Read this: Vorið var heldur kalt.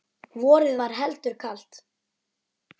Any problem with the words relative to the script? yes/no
no